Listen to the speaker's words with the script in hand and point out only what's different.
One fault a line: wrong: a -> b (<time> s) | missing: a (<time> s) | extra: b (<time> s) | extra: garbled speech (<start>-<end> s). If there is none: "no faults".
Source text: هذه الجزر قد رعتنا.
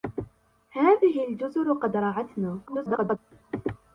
extra: garbled speech (2.7-3.2 s)